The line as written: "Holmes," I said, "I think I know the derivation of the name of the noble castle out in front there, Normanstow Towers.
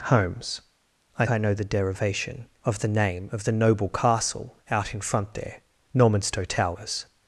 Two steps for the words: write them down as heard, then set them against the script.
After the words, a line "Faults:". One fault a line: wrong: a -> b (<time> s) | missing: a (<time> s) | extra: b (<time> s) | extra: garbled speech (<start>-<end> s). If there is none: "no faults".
"Holmes," I I know the derivation of the name of the noble castle out in front there, Normanstow Towers.
Faults:
missing: said I think (1.3 s)